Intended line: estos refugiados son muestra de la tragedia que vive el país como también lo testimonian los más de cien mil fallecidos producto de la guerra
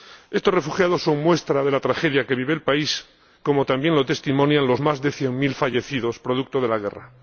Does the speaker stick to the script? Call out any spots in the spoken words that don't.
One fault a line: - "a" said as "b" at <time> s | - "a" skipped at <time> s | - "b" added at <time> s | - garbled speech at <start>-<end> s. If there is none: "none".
none